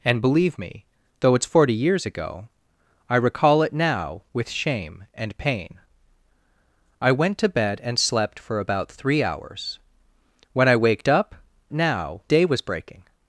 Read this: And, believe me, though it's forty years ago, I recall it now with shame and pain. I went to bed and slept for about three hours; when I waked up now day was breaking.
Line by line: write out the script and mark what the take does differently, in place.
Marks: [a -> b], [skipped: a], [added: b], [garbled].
And, believe me, though it's forty years ago, I recall it now with shame and pain. I went to bed and slept for about three hours; when I waked up now day was breaking.